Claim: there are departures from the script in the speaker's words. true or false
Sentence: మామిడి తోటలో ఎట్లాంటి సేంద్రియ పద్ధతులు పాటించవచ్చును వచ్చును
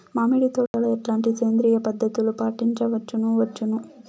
false